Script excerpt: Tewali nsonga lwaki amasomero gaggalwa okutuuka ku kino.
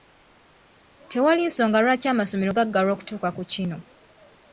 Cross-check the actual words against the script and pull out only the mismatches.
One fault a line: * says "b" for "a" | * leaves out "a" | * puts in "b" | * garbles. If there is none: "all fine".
all fine